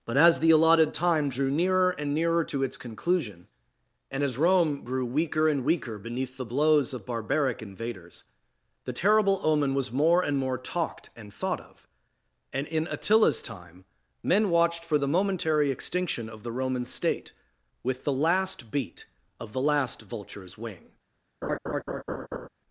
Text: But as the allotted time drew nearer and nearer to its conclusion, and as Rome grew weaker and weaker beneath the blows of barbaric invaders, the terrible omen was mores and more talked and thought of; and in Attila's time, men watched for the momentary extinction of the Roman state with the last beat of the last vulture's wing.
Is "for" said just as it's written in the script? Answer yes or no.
yes